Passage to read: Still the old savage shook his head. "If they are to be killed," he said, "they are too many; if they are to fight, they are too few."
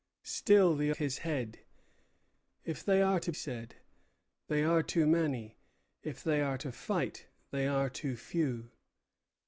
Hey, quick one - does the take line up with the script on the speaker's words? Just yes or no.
no